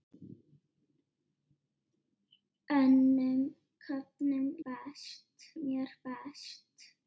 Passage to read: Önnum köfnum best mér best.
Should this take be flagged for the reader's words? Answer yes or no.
no